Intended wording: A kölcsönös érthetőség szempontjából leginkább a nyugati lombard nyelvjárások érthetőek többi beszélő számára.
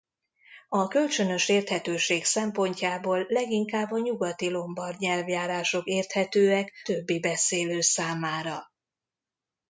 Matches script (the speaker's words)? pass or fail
pass